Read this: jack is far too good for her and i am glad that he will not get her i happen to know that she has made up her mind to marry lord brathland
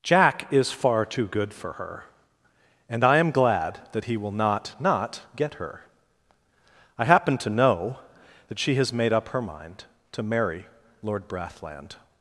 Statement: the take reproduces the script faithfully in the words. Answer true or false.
false